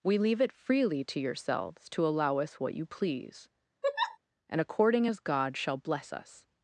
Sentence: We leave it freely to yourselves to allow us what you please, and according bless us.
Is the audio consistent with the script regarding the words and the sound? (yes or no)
no